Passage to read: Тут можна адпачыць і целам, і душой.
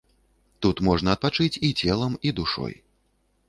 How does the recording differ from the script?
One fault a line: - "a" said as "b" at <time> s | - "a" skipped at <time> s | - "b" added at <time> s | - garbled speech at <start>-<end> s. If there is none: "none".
none